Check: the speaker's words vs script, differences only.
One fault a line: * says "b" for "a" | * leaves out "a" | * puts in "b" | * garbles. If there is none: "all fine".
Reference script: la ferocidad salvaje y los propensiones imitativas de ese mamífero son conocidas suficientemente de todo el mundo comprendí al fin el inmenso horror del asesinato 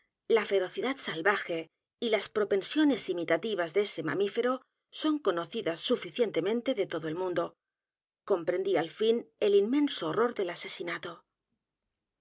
* says "las" for "los"